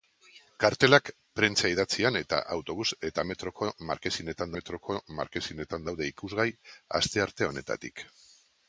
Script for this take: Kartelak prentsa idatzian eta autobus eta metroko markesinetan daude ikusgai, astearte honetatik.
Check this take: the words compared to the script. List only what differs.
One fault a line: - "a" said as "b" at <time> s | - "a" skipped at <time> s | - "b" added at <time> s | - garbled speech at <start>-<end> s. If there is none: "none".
- "metroko markesinetan" added at 4.6 s